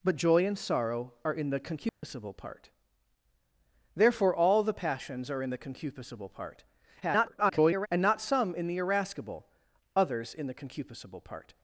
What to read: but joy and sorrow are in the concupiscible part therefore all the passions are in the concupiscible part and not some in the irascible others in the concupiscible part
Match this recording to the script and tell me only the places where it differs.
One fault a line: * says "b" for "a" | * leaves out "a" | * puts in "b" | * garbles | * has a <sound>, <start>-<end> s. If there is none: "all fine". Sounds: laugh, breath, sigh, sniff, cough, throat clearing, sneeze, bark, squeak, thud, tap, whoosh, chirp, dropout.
* has a dropout, 1.9-2.0 s
* garbles